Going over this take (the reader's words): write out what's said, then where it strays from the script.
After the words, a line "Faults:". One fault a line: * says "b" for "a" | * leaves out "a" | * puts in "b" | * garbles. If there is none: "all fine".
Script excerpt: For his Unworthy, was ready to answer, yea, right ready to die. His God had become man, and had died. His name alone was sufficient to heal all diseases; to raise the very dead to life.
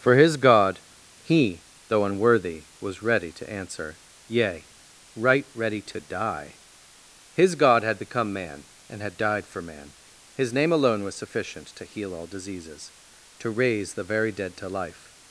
For his God, he, though unworthy, was ready to answer, yea, right ready to die. His God had become man, and had died for man. His name alone was sufficient to heal all diseases; to raise the very dead to life.
Faults:
* puts in "God he though"
* puts in "for man"